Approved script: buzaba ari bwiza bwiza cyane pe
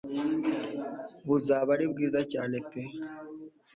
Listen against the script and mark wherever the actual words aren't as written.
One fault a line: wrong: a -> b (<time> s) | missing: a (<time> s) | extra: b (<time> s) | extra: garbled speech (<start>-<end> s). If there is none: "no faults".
missing: bwiza (2.2 s)